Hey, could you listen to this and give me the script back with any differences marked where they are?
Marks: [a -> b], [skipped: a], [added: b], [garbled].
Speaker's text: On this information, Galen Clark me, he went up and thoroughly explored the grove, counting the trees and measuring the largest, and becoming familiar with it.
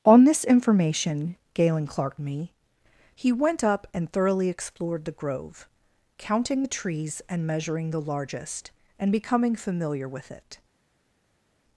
On this information, Galen Clark me, he went up and thoroughly explored the grove, counting the trees and measuring the largest, and becoming familiar with it.